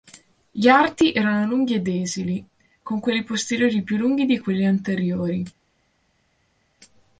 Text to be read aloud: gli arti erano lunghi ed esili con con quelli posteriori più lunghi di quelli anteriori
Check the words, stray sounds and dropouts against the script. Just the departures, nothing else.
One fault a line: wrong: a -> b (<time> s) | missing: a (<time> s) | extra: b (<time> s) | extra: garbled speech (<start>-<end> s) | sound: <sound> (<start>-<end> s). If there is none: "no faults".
missing: con (3.0 s)